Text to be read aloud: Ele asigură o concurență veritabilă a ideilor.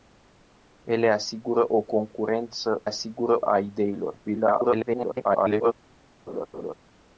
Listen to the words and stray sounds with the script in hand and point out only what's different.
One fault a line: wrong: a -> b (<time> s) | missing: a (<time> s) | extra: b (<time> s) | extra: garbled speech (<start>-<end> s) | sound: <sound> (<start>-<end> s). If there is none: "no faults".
wrong: veritabilă -> asigură (2.8 s)
extra: garbled speech (4.2-5.7 s)
sound: laugh (6.3-6.7 s)